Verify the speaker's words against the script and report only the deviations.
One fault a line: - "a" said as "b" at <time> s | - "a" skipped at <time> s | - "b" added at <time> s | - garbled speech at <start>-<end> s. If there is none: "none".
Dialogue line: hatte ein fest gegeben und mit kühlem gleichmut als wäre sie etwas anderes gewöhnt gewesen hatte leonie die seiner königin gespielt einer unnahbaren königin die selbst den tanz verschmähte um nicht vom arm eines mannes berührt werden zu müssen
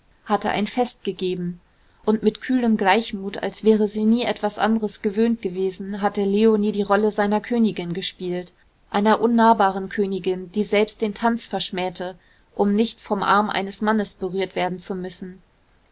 - "nie" added at 4.0 s
- "rolle" added at 6.8 s